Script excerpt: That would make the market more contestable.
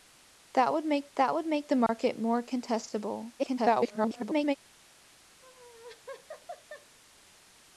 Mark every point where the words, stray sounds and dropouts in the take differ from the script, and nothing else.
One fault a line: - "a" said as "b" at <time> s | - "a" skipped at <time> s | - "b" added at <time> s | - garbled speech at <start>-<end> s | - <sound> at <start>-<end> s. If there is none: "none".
- "that would make" added at 1.2 s
- dropout at 1.9-1.9 s
- garbled speech at 3.4-4.6 s
- laugh at 5.4-7.0 s